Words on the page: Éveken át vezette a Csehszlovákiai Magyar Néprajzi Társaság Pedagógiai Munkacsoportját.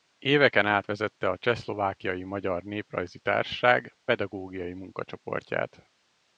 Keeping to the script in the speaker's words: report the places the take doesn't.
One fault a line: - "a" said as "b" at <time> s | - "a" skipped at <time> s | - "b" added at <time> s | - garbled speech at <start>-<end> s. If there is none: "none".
none